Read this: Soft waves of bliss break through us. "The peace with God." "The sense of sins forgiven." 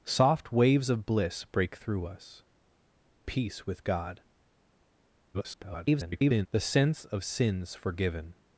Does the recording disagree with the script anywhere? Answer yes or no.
yes